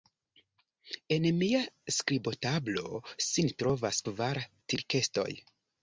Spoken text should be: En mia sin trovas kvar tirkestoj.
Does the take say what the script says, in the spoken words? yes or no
no